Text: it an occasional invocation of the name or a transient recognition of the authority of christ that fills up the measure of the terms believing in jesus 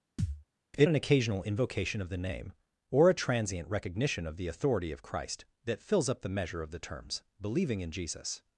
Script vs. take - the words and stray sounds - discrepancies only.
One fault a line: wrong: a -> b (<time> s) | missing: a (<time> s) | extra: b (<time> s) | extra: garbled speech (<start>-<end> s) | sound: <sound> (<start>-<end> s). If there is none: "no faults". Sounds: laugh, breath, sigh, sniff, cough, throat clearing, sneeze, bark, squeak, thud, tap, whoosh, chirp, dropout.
sound: thud (0.2-0.4 s)